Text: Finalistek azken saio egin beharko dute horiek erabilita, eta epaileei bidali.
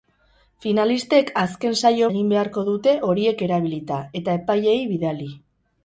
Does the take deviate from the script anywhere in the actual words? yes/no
no